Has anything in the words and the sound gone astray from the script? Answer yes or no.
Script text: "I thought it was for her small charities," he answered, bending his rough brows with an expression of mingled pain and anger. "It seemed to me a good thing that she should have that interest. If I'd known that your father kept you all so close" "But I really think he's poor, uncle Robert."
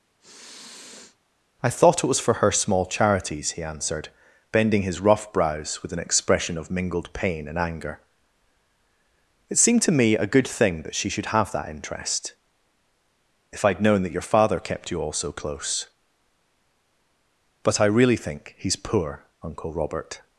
yes